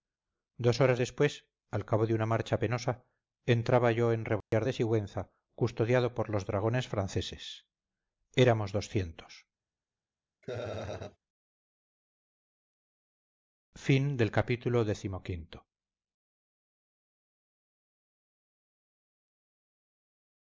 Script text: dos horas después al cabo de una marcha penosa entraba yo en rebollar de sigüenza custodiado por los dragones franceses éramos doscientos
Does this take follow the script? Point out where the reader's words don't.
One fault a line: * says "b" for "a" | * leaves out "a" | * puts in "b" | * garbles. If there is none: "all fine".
all fine